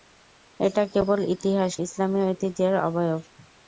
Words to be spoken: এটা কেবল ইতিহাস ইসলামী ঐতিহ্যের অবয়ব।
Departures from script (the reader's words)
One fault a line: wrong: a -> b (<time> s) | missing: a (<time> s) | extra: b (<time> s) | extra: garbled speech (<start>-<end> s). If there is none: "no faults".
no faults